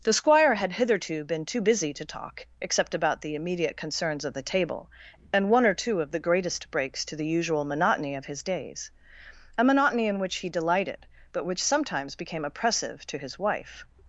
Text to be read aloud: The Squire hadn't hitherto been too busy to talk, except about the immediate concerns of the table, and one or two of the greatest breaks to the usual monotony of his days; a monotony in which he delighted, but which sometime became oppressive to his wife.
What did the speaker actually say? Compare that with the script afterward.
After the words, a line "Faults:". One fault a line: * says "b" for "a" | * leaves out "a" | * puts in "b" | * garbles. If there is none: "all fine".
The Squire had hitherto been too busy to talk, except about the immediate concerns of the table, and one or two of the greatest breaks to the usual monotony of his days; a monotony in which he delighted, but which sometimes became oppressive to his wife.
Faults:
* says "had" for "hadn't"
* says "sometimes" for "sometime"